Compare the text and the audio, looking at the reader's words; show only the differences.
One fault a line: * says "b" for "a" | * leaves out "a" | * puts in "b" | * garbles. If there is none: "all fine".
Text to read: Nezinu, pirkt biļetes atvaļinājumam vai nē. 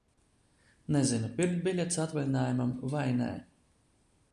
all fine